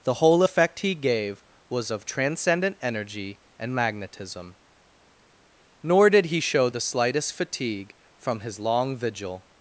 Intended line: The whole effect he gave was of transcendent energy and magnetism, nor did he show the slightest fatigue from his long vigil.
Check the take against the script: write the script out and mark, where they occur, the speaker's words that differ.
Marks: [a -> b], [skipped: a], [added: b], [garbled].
The whole effect he gave was of transcendent energy and magnetism, nor did he show the slightest fatigue from his long vigil.